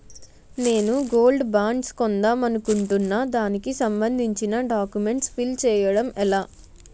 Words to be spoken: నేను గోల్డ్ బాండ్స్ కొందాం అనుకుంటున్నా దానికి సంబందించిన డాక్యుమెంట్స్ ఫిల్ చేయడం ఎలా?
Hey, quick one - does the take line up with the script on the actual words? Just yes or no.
yes